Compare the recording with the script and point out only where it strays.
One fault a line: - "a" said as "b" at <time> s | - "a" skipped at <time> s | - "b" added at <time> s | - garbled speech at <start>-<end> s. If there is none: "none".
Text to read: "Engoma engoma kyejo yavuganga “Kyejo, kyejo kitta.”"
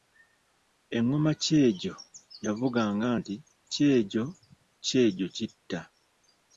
- "engoma" skipped at 1.3 s
- "nti" added at 3.2 s